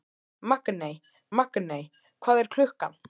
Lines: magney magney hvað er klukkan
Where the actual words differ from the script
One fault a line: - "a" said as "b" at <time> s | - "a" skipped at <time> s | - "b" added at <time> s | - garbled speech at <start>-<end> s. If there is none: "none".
none